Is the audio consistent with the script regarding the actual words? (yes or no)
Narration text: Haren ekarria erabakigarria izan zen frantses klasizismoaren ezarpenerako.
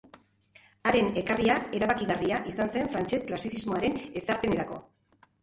yes